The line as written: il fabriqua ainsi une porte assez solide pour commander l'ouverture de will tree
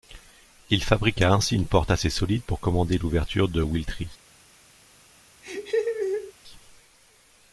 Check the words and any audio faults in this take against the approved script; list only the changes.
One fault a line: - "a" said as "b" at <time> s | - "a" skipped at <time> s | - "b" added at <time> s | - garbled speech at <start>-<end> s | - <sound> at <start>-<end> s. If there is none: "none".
- laugh at 5.4-6.3 s